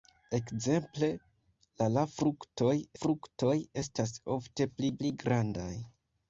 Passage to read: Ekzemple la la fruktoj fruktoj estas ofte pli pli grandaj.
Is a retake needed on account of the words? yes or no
no